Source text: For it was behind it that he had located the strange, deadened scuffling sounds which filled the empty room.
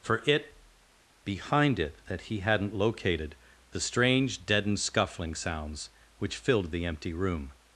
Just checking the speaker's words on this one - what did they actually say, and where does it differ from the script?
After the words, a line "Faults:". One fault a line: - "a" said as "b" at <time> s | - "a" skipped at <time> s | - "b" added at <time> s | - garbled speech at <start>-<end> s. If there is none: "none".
For it behind it that he hadn't located the strange, deadened scuffling sounds which filled the empty room.
Faults:
- "was" skipped at 0.6 s
- "had" said as "hadn't" at 2.4 s